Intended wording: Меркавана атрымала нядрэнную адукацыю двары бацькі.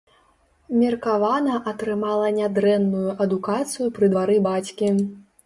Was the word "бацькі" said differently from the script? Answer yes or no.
no